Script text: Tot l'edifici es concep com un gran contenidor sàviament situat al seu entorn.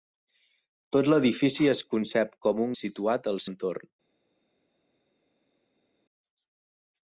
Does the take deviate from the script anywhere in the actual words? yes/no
yes